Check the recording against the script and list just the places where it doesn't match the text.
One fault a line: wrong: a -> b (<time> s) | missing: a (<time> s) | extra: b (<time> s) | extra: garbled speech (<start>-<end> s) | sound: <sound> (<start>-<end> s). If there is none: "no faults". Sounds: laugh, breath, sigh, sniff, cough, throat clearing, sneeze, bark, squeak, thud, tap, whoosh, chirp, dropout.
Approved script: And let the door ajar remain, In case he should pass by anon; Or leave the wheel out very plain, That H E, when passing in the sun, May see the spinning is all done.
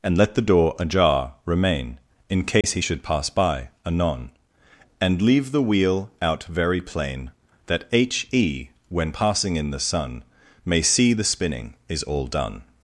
sound: dropout (2.6-2.6 s)
wrong: Or -> And (5.0 s)